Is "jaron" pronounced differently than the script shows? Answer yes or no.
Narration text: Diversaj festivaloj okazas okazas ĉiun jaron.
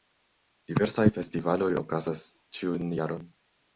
no